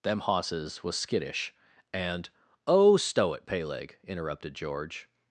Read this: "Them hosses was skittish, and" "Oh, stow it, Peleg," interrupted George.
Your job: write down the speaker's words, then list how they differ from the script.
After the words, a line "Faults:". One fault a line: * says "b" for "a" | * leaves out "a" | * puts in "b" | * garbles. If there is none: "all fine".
"Them hosses was skittish, and" "Oh, stow it, Peleg," interrupted George.
Faults:
all fine